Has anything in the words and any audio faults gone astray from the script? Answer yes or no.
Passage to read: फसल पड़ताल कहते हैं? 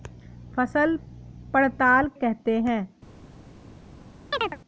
yes